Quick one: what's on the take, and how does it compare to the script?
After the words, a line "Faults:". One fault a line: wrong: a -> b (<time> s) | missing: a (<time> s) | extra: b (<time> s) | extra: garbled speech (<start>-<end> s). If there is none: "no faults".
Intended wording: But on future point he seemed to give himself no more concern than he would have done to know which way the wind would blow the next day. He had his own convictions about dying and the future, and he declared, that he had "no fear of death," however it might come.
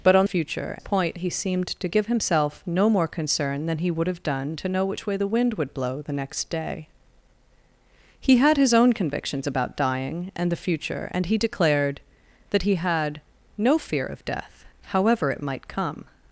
But on future point he seemed to give himself no more concern than he would have done to know which way the wind would blow the next day. He had his own convictions about dying and the future, and he declared, that he had "no fear of death," however it might come.
Faults:
no faults